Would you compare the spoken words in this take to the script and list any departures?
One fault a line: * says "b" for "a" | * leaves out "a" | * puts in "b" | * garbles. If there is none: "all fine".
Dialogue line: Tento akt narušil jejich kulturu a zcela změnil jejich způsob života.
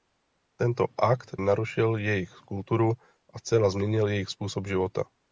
all fine